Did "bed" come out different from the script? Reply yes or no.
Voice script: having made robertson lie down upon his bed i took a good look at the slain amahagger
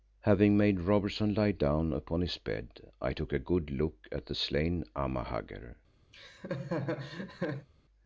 no